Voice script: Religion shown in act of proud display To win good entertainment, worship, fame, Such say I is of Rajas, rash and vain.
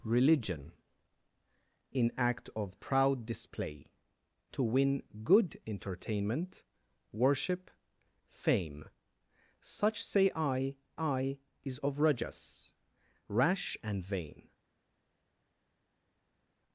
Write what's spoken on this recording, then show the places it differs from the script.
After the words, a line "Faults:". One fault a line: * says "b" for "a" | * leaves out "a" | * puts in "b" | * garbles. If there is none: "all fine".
Religion in act of proud display To win good entertainment, worship, fame, Such say I I is of Rajas, rash and vain.
Faults:
* leaves out "shown"
* puts in "I"